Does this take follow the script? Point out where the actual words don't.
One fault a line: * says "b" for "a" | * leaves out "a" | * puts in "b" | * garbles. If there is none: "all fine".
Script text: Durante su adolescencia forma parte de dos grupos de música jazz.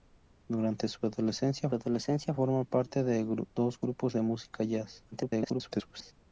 * puts in "adolescencia"
* garbles